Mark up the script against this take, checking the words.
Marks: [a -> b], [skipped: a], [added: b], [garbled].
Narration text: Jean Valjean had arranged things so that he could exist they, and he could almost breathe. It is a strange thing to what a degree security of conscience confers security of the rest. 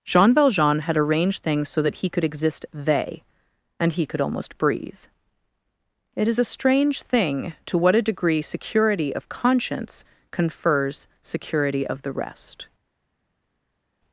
Jean Valjean had arranged things so that he could exist they, and he could almost breathe. It is a strange thing to what a degree security of conscience confers security of the rest.